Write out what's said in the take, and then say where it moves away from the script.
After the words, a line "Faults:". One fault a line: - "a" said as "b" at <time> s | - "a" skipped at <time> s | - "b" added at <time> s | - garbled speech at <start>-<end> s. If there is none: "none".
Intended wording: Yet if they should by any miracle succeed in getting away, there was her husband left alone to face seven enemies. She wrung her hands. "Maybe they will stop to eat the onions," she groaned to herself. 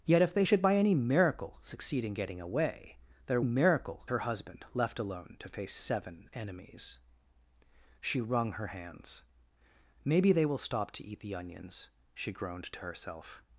Yet if they should by any miracle succeed in getting away, there miracle her husband left alone to face seven enemies. She wrung her hands. "Maybe they will stop to eat the onions," she groaned to herself.
Faults:
- "was" said as "miracle" at 3.4 s